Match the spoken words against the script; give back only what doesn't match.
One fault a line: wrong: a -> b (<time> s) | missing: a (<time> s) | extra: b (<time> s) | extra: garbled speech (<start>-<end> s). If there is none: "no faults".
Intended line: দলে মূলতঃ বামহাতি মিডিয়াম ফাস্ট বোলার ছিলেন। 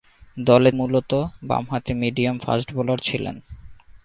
no faults